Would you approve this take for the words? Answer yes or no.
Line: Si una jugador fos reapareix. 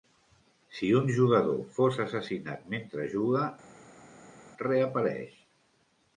no